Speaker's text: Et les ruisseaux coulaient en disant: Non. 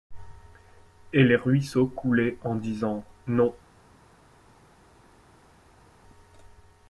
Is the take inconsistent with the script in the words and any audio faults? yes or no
no